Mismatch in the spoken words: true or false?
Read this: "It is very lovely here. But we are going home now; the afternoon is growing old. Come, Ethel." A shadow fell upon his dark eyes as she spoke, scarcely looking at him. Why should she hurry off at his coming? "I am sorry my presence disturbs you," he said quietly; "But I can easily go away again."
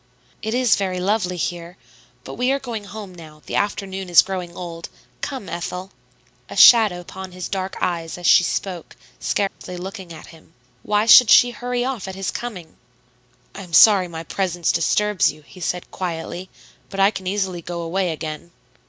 true